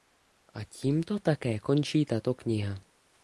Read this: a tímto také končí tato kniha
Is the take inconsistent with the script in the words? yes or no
no